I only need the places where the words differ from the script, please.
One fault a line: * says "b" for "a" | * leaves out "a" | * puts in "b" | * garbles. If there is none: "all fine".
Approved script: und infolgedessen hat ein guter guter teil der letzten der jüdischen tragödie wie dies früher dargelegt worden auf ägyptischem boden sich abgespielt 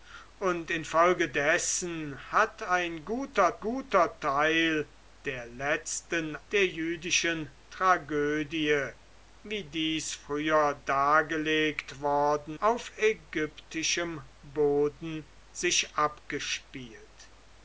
all fine